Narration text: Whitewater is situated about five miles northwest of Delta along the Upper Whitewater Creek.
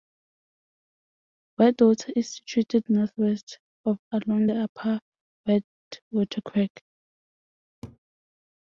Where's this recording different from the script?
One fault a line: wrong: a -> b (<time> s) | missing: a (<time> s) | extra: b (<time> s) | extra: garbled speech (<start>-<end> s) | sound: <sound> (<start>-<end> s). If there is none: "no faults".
missing: about five miles (2.9 s)
missing: Delta (4.0 s)
sound: laugh (7.8-8.0 s)